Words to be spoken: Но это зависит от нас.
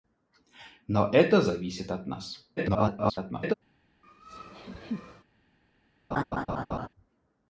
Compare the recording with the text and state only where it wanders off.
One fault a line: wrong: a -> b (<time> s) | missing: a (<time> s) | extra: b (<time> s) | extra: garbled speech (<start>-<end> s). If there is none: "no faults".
extra: garbled speech (2.6-3.5 s)